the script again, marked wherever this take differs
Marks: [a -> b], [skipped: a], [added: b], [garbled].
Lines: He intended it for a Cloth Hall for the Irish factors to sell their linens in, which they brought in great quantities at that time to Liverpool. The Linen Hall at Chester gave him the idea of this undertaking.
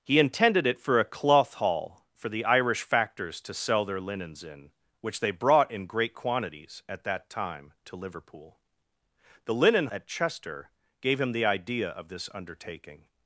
He intended it for a Cloth Hall for the Irish factors to sell their linens in, which they brought in great quantities at that time to Liverpool. The Linen [skipped: Hall] at Chester gave him the idea of this undertaking.